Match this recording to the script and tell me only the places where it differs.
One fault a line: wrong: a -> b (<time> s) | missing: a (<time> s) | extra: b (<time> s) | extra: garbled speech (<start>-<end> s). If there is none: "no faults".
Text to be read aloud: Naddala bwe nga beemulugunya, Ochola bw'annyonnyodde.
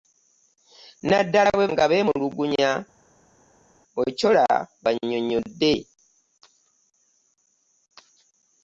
no faults